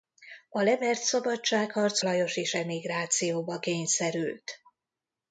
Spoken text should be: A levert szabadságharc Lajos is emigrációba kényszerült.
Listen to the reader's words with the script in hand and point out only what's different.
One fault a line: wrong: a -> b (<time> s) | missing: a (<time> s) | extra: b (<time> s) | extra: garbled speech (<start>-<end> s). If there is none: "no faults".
no faults